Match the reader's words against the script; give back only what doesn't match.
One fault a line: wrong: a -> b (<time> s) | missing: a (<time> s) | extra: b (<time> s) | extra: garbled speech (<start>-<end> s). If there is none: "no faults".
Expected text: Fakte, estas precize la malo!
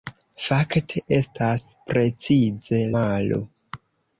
missing: la (2.8 s)